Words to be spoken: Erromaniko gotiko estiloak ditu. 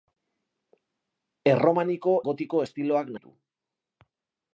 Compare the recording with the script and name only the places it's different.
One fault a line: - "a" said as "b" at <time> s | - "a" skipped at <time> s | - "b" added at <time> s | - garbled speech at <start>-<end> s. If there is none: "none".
none